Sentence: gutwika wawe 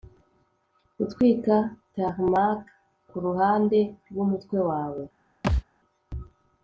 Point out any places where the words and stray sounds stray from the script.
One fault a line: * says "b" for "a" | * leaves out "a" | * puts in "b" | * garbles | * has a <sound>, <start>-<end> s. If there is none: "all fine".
* puts in "tarmac kuruhande rwumutwe"
* has a thud, 5.4-5.6 s